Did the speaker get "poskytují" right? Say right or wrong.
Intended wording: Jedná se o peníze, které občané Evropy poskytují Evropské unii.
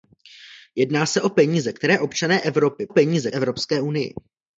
wrong